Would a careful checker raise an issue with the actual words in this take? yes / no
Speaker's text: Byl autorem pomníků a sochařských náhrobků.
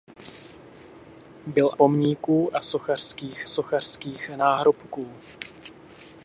yes